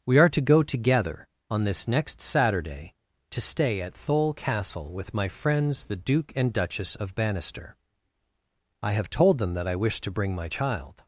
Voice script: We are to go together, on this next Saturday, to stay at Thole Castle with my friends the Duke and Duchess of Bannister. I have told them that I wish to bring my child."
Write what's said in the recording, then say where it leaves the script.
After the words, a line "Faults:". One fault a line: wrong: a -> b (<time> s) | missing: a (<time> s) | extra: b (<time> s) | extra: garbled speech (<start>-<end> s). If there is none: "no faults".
We are to go together, on this next Saturday, to stay at Thole Castle with my friends the Duke and Duchess of Bannister. I have told them that I wish to bring my child."
Faults:
no faults